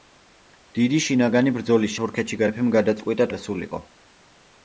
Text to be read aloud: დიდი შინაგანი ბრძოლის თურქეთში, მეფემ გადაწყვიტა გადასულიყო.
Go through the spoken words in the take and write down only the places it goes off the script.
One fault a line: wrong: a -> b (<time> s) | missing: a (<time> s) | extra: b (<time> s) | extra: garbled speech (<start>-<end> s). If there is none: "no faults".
no faults